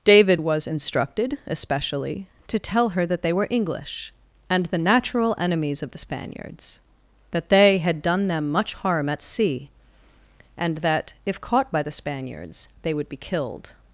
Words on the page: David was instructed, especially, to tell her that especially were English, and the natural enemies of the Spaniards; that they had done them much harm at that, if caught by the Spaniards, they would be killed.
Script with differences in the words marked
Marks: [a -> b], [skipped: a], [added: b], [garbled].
David was instructed, especially, to tell her that [especially -> they] were English, and the natural enemies of the Spaniards; that they had done them much harm at [added: sea and] that, if caught by the Spaniards, they would be killed.